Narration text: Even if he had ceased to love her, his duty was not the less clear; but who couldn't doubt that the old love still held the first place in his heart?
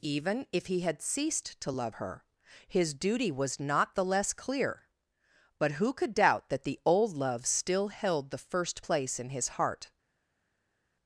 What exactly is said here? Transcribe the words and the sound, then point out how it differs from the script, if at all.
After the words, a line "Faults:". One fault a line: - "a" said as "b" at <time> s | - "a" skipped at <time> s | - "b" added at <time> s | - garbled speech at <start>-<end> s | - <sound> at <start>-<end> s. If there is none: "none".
Even if he had ceased to love her, his duty was not the less clear; but who could doubt that the old love still held the first place in his heart?
Faults:
- "couldn't" said as "could" at 5.9 s